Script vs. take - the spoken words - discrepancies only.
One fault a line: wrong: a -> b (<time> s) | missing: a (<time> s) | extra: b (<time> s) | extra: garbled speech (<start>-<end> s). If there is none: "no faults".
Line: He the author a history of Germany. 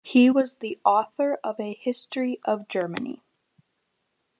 extra: was (0.3 s)
extra: of (1.4 s)